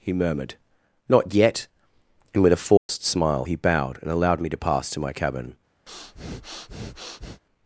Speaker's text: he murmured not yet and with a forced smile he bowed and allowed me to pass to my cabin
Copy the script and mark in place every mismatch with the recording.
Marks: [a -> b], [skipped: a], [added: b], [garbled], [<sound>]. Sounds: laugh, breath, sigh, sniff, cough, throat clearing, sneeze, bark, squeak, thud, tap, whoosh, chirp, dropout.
he murmured not yet and with a forced [dropout] smile he bowed and allowed me to pass to my cabin [breath]